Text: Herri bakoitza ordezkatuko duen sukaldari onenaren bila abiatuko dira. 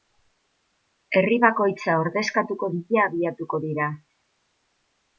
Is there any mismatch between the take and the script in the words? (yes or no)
yes